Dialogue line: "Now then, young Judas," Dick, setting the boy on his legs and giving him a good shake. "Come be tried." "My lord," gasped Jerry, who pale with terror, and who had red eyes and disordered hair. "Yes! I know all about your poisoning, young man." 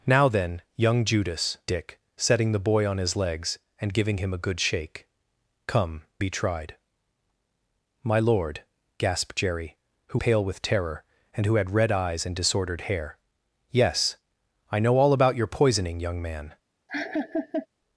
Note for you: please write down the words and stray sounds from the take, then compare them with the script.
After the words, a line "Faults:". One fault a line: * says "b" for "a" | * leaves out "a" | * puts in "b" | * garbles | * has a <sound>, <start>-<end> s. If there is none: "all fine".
"Now then, young Judas," Dick, setting the boy on his legs and giving him a good shake. "Come be tried." "My lord," gasped Jerry, who pale with terror, and who had red eyes and disordered hair. "Yes! I know all about your poisoning, young man."
Faults:
* has a laugh, 16.9-17.7 s